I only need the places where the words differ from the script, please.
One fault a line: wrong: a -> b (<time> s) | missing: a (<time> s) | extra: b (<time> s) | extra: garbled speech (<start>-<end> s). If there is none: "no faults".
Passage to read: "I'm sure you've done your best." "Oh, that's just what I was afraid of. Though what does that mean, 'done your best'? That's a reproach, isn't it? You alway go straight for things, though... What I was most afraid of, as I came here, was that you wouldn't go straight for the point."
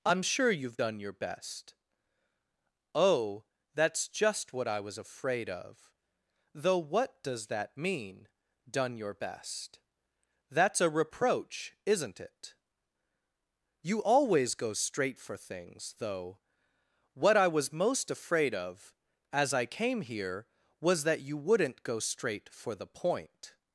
wrong: alway -> always (14.0 s)